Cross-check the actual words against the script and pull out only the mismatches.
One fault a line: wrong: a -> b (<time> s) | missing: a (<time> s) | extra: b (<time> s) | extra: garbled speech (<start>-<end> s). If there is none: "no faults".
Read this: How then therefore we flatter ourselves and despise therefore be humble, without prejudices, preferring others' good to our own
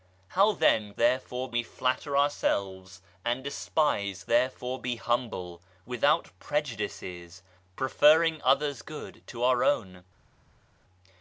no faults